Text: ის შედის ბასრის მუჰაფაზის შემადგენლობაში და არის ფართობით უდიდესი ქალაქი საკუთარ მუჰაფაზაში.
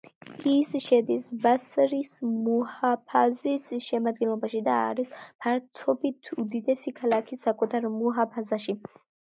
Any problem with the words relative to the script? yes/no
no